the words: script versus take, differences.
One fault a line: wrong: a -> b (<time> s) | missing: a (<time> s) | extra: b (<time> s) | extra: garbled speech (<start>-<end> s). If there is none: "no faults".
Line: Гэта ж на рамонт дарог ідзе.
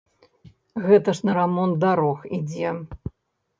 no faults